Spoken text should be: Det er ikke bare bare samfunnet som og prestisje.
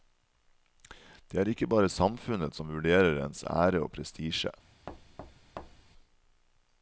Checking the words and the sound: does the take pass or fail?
fail